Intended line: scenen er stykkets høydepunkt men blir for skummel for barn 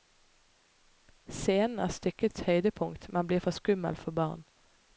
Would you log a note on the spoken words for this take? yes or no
no